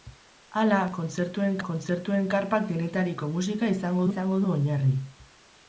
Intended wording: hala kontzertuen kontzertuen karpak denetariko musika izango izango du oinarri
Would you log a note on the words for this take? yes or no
no